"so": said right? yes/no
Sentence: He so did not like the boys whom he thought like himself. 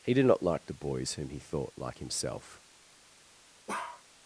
no